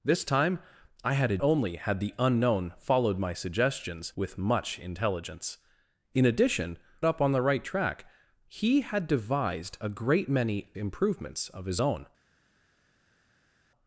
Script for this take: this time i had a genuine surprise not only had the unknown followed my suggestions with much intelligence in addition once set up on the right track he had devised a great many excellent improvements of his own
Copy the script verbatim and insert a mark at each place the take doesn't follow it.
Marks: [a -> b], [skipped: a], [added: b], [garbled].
this time i had a [skipped: genuine surprise not] only had the unknown followed my suggestions with much intelligence in addition [skipped: once set] up on the right track he had devised a great many [skipped: excellent] improvements of his own